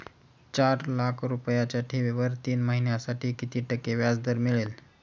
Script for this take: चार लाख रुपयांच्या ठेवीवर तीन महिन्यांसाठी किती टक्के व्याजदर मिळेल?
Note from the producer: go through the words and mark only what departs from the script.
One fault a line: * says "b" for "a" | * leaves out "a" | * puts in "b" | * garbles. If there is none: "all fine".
all fine